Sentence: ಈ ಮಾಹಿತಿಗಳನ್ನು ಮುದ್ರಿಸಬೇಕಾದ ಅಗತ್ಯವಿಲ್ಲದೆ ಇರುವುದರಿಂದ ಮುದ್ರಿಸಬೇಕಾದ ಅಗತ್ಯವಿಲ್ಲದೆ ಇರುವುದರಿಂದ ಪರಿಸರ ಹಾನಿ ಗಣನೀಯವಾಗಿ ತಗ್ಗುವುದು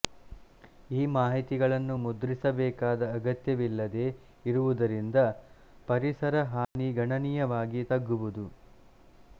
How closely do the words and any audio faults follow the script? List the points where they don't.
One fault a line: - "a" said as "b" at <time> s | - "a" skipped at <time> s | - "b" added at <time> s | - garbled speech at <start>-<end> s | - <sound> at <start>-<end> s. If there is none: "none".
- "ಮುದ್ರಿಸಬೇಕಾದ ಅಗತ್ಯವಿಲ್ಲದೆ ಇರುವುದರಿಂದ" skipped at 5.2 s
- dropout at 6.6-6.8 s